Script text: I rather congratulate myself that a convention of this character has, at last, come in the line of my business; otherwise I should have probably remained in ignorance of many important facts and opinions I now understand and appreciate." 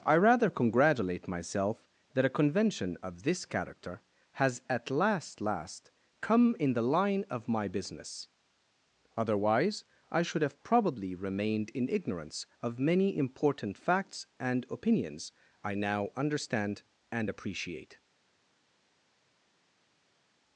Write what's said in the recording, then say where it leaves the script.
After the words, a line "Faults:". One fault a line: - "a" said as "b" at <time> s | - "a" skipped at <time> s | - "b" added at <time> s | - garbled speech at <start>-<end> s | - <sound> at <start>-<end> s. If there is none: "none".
I rather congratulate myself that a convention of this character has, at last last, come in the line of my business; otherwise I should have probably remained in ignorance of many important facts and opinions I now understand and appreciate."
Faults:
- "last" added at 5.4 s